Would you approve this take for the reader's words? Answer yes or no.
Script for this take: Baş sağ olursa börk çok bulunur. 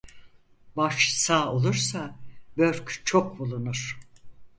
yes